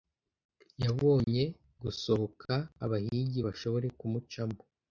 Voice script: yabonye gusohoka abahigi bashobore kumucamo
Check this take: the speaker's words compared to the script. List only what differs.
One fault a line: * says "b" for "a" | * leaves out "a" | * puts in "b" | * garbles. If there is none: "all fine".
all fine